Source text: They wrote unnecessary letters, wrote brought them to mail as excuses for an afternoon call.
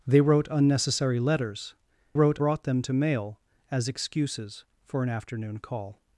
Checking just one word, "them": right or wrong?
right